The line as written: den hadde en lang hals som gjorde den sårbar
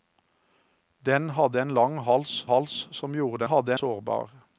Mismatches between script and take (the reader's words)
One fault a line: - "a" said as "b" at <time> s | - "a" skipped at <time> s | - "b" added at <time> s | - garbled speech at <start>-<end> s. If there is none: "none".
- "hals" added at 2.5 s
- "den" said as "hadde" at 3.4 s